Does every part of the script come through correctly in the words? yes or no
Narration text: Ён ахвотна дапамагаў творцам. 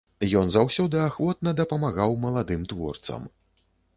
no